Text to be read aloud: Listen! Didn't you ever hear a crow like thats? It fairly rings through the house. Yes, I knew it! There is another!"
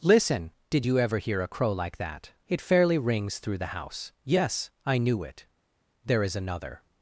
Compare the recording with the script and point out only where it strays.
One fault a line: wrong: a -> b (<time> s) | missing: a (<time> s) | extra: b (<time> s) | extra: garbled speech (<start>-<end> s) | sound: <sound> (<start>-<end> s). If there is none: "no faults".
wrong: Didn't -> Did (0.7 s)
wrong: thats -> that (2.0 s)